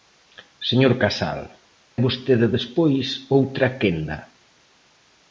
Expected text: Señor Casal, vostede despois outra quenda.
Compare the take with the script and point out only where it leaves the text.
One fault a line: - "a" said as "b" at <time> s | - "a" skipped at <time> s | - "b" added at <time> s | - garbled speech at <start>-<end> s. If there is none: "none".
none